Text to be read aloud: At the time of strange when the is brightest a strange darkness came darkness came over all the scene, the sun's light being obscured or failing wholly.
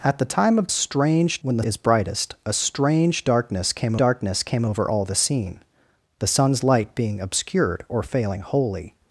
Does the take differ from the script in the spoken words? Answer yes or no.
no